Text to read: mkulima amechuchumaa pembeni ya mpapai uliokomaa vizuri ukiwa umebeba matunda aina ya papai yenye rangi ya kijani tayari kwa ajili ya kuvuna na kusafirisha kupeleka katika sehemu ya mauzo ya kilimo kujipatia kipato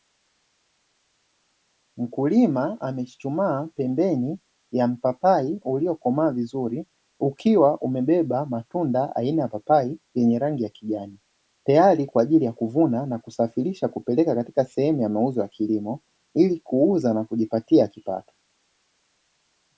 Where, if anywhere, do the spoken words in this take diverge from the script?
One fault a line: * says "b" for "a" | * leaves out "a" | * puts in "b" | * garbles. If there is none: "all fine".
* puts in "ili kuuza na"